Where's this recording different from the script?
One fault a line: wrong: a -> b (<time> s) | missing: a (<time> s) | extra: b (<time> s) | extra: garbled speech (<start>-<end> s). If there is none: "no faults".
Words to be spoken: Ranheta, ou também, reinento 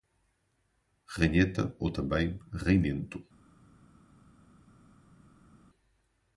no faults